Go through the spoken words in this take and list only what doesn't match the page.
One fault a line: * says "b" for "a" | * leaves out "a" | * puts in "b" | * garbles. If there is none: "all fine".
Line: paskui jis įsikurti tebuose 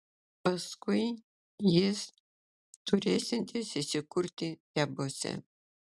* puts in "turėsiantis"